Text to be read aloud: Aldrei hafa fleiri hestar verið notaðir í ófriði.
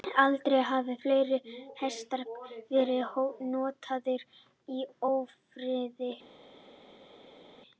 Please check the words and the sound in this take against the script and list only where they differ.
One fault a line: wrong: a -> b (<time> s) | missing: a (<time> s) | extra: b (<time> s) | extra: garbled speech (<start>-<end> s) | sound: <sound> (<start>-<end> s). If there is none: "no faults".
no faults